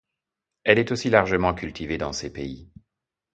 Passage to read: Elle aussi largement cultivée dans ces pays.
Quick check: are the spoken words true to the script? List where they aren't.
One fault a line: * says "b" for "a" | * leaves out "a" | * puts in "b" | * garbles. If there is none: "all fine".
* puts in "est"